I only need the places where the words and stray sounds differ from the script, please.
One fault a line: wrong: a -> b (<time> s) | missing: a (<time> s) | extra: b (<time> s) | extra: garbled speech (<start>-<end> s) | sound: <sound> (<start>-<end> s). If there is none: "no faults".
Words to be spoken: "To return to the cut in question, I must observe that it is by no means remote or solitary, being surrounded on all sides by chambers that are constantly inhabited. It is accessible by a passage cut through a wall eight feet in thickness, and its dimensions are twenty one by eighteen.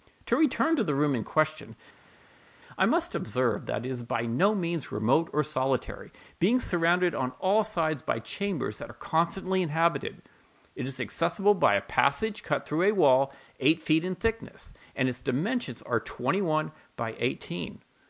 wrong: cut -> room (0.9 s)